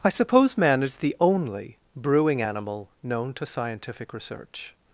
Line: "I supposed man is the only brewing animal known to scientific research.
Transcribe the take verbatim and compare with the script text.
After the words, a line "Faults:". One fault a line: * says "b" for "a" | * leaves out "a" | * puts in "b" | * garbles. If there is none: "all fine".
"I suppose man is the only brewing animal known to scientific research.
Faults:
* says "suppose" for "supposed"